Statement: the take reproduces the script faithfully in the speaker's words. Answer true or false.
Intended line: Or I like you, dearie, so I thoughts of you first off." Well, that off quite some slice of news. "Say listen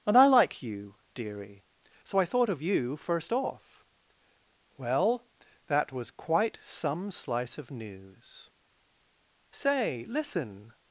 false